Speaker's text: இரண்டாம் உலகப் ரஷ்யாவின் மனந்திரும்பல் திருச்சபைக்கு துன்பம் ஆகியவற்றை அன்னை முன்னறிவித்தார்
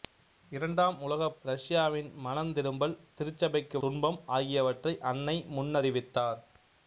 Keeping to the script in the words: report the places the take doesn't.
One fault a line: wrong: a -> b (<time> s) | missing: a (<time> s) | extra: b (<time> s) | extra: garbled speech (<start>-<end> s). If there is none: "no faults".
no faults